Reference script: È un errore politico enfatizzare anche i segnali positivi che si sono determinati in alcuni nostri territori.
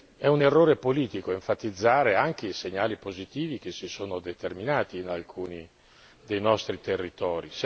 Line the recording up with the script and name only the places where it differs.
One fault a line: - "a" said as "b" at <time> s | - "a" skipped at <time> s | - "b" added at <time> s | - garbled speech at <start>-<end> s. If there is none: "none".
- "dei" added at 6.3 s